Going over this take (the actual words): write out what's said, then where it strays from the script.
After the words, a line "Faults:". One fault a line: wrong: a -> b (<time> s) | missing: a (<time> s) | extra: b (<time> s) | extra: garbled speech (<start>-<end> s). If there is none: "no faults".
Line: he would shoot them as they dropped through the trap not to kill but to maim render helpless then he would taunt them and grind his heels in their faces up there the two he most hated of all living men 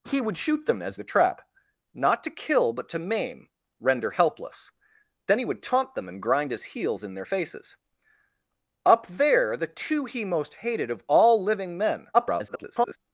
he would shoot them as the trap not to kill but to maim render helpless then he would taunt them and grind his heels in their faces up there the two he most hated of all living men [garbled]
Faults:
missing: they dropped through (1.0 s)
extra: garbled speech (12.1-13.0 s)